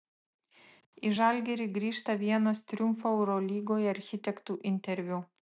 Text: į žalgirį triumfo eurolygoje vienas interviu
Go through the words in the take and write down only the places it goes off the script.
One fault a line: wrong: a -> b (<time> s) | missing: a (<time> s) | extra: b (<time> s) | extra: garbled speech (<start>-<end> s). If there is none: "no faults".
extra: grįžta vienas (1.8 s)
wrong: vienas -> architektų (4.0 s)